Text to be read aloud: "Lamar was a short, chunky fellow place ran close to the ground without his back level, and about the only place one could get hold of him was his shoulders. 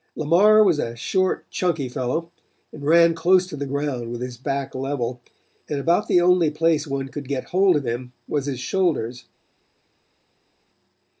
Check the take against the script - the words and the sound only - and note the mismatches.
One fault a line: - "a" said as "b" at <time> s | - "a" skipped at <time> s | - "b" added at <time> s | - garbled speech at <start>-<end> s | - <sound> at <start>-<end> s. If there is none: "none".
- "place" said as "and" at 2.7 s
- "without" said as "with" at 4.1 s